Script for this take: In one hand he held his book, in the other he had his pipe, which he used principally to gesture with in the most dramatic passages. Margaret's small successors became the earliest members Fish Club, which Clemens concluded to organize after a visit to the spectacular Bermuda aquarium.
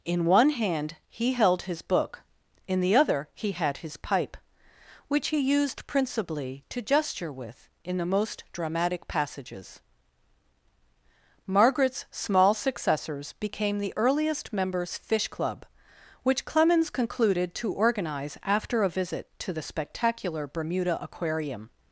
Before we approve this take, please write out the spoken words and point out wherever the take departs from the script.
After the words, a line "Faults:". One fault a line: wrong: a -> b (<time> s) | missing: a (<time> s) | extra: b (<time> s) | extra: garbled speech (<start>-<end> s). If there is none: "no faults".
In one hand he held his book, in the other he had his pipe, which he used principally to gesture with in the most dramatic passages. Margaret's small successors became the earliest members Fish Club, which Clemens concluded to organize after a visit to the spectacular Bermuda aquarium.
Faults:
no faults